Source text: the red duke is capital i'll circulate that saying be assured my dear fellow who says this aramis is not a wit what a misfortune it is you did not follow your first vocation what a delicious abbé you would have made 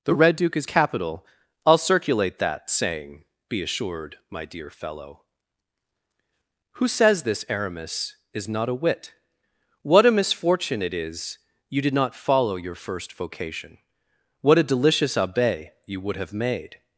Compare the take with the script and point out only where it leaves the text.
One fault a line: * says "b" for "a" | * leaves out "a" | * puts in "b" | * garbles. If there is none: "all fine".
all fine